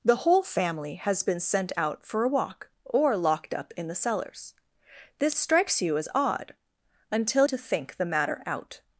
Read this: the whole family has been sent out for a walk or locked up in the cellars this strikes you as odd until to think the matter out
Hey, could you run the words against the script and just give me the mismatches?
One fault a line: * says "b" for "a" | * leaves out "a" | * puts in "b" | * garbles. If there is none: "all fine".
all fine